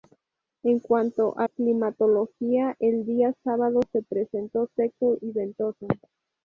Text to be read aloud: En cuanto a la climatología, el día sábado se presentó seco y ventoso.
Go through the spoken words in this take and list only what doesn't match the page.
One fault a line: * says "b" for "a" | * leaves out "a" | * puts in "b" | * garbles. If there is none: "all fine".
* leaves out "la"